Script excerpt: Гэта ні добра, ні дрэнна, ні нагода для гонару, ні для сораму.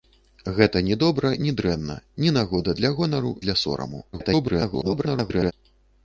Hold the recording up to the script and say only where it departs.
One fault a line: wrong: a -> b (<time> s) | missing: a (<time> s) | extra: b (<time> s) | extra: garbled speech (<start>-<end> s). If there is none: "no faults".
missing: ні (3.4 s)
extra: garbled speech (4.1-5.5 s)